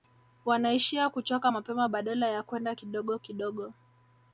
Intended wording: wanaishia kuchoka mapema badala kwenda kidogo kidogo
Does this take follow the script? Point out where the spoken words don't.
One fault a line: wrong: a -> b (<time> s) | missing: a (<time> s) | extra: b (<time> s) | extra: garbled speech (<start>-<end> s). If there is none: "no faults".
extra: ya (2.3 s)